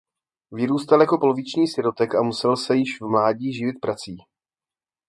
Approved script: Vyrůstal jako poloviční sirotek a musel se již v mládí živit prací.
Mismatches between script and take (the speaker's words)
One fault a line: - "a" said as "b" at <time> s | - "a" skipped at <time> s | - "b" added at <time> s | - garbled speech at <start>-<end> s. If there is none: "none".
none